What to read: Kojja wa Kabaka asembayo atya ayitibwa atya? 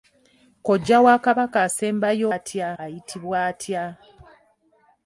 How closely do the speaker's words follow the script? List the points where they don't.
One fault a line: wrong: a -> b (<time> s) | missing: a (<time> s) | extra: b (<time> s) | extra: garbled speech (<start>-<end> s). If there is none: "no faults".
no faults